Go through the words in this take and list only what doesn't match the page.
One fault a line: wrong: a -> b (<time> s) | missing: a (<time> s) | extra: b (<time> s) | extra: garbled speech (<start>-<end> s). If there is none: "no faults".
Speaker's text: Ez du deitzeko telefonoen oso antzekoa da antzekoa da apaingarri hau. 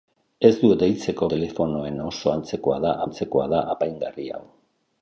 no faults